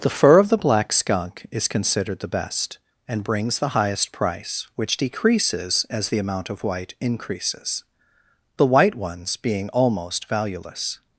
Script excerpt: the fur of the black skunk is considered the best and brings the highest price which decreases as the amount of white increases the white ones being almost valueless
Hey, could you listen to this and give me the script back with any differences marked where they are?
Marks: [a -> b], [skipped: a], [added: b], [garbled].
the fur of the black skunk is considered the best and brings the highest price which decreases as the amount of white increases the white ones being almost valueless